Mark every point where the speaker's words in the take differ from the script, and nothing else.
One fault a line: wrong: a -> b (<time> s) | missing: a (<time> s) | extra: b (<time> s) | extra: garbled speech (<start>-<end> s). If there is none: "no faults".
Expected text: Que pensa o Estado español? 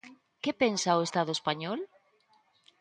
no faults